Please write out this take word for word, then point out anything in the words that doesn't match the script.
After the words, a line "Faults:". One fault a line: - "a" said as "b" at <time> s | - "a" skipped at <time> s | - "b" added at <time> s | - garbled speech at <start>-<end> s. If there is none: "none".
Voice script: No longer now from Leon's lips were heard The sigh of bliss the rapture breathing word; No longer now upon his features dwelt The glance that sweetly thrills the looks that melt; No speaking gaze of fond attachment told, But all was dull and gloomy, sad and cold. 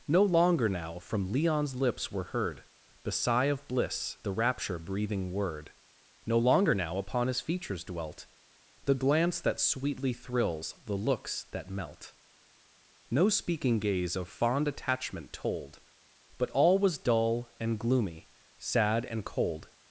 No longer now from Leon's lips were heard The sigh of bliss the rapture breathing word; No longer now upon his features dwelt The glance that sweetly thrills the looks that melt; No speaking gaze of fond attachment told, But all was dull and gloomy, sad and cold.
Faults:
none